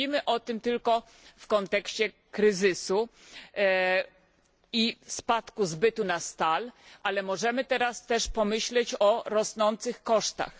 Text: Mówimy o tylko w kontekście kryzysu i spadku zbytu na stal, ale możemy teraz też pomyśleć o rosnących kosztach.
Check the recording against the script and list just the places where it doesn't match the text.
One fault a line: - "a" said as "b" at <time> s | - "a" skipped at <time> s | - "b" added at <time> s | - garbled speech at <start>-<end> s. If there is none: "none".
- "tym" added at 0.4 s